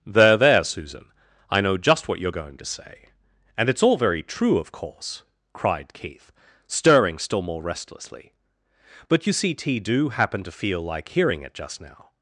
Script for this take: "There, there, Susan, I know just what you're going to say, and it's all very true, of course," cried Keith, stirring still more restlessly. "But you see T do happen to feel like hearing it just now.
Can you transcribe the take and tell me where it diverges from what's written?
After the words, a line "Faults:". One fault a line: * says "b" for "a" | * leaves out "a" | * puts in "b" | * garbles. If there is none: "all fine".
"There, there, Susan, I know just what you're going to say, and it's all very true, of course," cried Keith, stirring still more restlessly. "But you see T do happen to feel like hearing it just now.
Faults:
all fine